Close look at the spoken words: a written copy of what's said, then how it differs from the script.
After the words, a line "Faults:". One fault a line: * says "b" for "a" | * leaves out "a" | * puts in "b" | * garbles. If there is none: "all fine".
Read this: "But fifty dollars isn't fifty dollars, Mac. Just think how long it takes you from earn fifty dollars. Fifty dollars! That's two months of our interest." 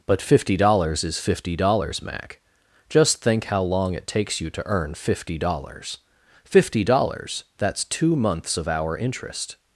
"But fifty dollars is fifty dollars, Mac. Just think how long it takes you to earn fifty dollars. Fifty dollars! That's two months of our interest."
Faults:
* says "is" for "isn't"
* says "to" for "from"